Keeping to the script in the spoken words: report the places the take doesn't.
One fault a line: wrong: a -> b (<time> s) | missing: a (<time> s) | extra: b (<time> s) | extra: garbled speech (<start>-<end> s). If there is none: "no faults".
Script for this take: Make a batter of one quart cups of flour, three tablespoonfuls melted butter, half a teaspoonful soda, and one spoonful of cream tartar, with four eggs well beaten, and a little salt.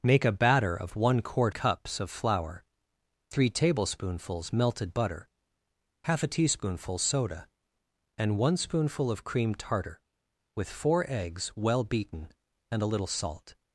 no faults